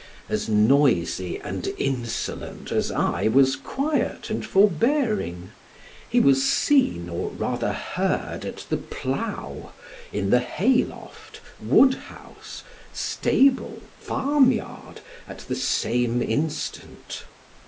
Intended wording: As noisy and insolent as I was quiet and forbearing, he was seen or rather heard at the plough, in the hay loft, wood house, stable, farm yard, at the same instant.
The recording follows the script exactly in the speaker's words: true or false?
true